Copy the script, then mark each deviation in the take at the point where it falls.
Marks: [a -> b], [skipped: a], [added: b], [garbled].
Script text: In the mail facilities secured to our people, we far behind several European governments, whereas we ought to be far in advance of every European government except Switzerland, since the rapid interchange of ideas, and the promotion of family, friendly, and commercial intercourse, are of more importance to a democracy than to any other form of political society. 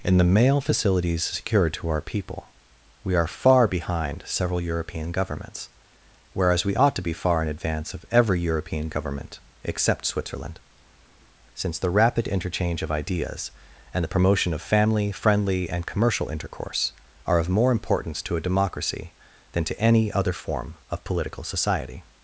In the mail facilities secured to our people, we [added: are] far behind several European governments, whereas we ought to be far in advance of every European government except Switzerland, since the rapid interchange of ideas, and the promotion of family, friendly, and commercial intercourse, are of more importance to a democracy than to any other form of political society.